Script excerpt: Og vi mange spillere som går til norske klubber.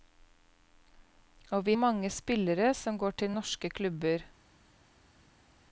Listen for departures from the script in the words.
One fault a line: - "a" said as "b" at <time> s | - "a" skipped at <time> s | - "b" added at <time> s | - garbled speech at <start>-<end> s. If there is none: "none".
none